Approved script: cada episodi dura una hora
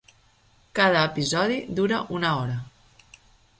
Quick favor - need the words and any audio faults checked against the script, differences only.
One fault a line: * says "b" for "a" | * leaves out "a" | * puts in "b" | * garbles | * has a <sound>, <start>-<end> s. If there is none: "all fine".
all fine